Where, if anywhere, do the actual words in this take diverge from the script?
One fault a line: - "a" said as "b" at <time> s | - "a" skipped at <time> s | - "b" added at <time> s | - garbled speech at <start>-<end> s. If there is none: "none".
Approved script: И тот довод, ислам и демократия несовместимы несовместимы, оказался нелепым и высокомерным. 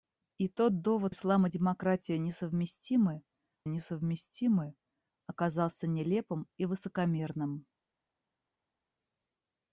none